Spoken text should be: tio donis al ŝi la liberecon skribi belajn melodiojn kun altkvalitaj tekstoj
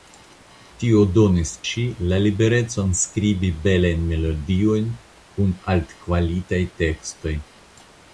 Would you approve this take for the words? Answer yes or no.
no